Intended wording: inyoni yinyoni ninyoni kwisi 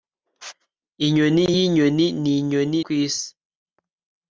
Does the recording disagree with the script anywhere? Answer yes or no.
no